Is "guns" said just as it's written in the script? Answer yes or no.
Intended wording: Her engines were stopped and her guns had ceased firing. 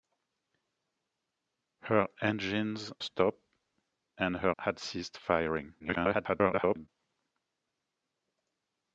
no